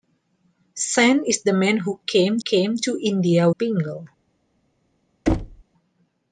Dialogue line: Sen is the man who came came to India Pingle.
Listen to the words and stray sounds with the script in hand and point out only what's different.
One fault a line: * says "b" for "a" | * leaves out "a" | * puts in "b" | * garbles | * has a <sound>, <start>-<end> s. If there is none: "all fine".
* has a thud, 5.3-5.6 s